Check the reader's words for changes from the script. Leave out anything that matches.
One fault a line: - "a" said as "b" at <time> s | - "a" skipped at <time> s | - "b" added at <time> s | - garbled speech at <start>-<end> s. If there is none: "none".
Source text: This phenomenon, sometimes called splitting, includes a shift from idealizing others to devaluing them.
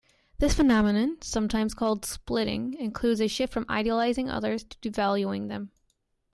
none